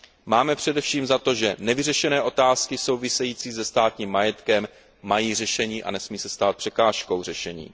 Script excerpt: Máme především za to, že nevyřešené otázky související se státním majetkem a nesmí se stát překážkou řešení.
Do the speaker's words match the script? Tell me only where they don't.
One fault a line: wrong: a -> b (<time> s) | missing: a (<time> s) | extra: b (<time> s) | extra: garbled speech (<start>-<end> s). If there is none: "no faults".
extra: mají řešení (5.0 s)